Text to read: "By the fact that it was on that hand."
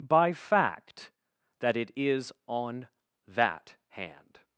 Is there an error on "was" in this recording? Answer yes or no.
yes